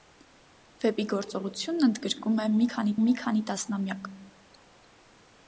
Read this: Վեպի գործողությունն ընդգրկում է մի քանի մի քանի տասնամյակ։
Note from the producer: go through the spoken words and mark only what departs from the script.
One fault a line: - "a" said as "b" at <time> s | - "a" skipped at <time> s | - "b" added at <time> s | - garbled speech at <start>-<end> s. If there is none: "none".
none